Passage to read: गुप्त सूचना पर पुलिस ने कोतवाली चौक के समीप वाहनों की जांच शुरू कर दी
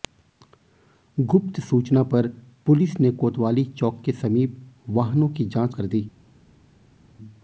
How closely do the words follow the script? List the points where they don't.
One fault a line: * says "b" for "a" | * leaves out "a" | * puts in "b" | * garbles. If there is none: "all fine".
* leaves out "शुरू"